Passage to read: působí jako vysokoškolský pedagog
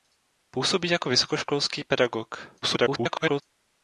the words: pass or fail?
fail